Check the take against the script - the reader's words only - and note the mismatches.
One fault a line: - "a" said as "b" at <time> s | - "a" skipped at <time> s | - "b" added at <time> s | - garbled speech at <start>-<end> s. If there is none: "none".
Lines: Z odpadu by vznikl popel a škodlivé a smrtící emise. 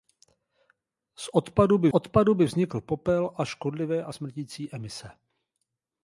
- "odpadu by" added at 1.9 s